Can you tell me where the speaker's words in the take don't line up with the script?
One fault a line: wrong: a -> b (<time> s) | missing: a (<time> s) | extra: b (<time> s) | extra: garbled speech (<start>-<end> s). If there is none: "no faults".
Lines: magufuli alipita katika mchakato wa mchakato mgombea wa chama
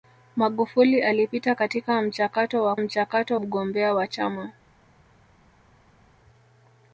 no faults